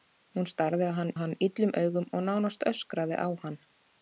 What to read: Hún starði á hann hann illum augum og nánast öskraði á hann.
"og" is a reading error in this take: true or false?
false